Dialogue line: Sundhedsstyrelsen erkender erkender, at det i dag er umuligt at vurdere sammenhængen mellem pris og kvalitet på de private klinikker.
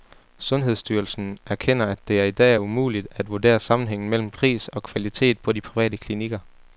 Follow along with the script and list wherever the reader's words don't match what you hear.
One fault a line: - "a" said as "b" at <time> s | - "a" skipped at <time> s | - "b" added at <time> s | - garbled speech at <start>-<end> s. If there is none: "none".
- "erkender" skipped at 1.9 s